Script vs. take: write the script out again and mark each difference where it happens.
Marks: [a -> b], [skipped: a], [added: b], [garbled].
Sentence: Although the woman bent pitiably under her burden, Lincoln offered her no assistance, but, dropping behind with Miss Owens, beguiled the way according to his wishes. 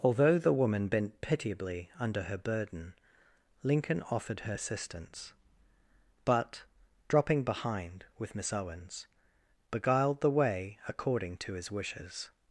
Although the woman bent pitiably under her burden, Lincoln offered her [skipped: no] assistance, but, dropping behind with Miss Owens, beguiled the way according to his wishes.